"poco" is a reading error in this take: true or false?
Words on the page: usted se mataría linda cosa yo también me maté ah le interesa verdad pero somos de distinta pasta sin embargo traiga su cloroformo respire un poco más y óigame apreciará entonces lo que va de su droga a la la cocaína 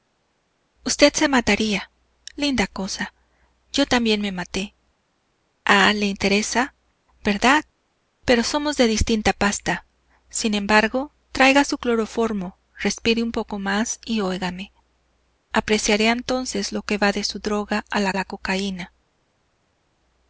false